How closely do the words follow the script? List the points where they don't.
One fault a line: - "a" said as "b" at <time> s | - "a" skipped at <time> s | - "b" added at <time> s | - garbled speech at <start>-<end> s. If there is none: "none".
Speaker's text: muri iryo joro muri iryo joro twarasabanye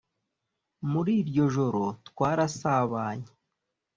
- "muri iryo joro" skipped at 1.8 s